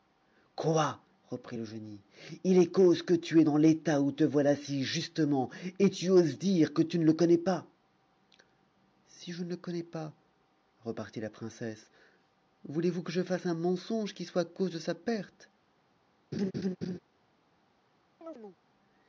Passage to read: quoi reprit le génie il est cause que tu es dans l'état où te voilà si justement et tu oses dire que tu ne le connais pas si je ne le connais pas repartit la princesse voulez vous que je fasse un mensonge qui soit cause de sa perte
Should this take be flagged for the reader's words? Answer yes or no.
no